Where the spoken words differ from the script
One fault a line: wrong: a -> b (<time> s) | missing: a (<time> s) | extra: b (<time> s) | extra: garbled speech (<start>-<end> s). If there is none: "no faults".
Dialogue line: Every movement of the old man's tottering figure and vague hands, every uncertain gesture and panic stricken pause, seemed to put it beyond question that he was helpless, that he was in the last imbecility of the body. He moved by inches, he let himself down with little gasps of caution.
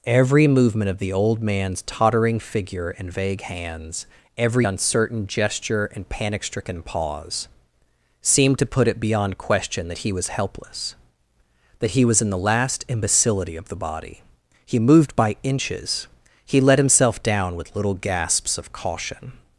no faults